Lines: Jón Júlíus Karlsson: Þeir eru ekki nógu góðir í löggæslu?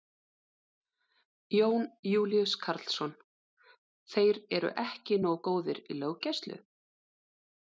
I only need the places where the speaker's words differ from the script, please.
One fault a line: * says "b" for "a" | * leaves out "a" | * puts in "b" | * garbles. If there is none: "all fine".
all fine